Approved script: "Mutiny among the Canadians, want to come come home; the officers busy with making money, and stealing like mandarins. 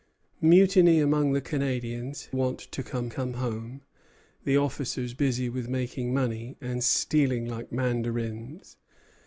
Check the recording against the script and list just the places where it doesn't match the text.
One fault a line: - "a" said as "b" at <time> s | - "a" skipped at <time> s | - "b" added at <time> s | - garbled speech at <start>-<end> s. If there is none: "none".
none